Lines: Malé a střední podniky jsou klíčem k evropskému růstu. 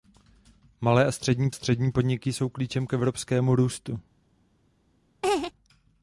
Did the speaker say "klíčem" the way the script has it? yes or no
yes